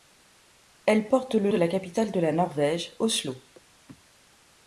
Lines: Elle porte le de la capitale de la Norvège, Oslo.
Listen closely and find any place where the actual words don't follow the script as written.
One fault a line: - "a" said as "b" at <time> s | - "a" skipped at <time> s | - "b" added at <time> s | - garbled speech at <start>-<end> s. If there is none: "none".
none